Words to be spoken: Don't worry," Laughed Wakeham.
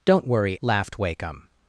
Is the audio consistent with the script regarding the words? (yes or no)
yes